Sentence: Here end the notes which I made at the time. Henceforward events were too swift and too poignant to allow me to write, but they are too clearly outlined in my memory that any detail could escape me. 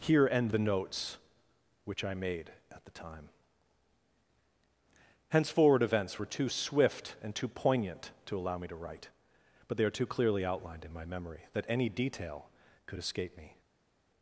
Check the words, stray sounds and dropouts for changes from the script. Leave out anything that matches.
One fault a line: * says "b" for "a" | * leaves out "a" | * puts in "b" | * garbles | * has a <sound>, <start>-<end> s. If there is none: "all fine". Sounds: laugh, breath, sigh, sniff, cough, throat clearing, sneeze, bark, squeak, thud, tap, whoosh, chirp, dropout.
all fine